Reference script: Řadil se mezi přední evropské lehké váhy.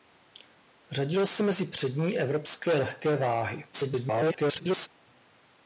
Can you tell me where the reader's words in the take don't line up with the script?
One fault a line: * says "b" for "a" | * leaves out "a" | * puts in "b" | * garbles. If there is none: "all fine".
* garbles